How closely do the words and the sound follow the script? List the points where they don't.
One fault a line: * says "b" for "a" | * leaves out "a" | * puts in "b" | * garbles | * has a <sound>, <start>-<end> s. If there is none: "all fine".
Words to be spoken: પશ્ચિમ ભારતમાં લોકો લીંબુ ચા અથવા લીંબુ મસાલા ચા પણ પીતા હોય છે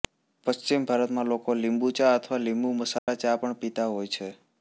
* has a dropout, 3.0-3.1 s